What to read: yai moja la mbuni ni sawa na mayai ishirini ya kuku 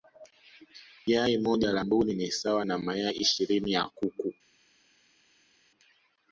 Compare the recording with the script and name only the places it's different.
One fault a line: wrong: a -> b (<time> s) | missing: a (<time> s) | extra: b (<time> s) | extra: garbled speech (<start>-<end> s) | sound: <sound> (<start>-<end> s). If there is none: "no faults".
no faults